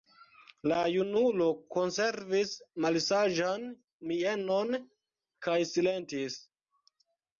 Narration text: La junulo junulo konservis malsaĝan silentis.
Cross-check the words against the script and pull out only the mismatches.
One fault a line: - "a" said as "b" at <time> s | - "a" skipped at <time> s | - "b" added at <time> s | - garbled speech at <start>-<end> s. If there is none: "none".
- "junulo" skipped at 1.5 s
- "mienon kaj" added at 4.1 s